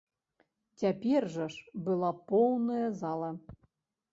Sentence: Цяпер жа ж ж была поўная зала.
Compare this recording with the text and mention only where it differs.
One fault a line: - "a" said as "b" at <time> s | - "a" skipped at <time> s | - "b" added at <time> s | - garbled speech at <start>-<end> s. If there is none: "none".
- "ж" skipped at 1.8 s